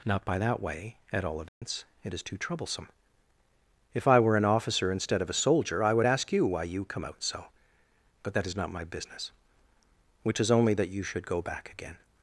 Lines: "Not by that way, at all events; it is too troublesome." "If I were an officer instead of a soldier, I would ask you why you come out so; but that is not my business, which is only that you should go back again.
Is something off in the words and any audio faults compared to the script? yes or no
yes